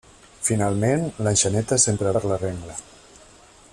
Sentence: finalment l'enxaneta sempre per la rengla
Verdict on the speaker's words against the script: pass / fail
pass